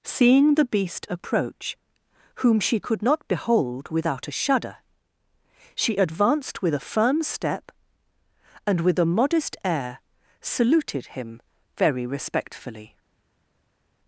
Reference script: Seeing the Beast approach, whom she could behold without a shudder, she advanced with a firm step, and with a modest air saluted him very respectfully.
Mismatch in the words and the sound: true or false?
true